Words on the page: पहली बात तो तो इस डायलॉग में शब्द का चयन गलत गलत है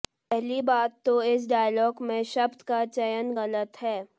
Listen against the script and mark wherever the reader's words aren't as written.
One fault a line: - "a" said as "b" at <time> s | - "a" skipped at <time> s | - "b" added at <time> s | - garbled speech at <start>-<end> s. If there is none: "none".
- "तो" skipped at 1.2 s
- "गलत" skipped at 3.8 s